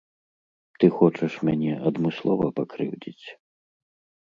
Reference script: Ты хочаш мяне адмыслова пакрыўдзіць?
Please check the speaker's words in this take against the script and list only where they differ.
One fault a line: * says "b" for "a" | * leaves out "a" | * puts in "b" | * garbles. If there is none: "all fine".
all fine